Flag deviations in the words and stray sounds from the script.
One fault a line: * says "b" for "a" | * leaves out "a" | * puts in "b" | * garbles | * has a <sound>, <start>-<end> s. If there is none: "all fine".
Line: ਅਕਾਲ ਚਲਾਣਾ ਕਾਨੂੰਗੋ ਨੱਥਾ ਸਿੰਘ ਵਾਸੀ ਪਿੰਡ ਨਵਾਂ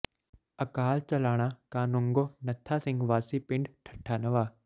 * puts in "ਠੱਟਾ"